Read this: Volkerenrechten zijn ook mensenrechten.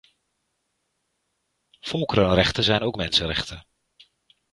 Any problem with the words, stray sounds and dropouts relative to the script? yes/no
no